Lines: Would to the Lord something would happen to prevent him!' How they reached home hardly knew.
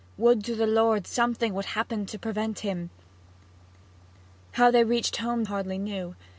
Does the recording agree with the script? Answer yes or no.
yes